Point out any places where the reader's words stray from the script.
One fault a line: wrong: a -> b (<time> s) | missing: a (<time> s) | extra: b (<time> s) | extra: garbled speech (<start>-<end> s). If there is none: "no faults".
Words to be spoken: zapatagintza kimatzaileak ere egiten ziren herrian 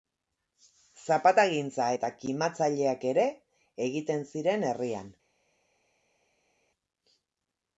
extra: eta (1.9 s)